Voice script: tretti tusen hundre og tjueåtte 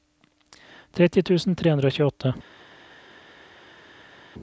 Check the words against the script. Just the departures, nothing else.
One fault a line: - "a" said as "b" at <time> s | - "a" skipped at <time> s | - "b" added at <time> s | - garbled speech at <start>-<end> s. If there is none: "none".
- "tre" added at 1.6 s